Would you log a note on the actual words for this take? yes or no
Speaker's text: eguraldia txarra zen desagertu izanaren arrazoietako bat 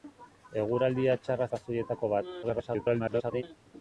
yes